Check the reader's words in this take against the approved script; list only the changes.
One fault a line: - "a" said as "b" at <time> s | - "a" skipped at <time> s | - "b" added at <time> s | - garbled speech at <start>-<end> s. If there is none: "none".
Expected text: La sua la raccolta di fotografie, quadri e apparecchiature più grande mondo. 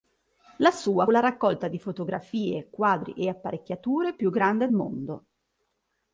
none